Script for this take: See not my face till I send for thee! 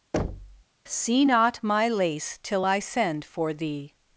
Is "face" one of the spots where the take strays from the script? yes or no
yes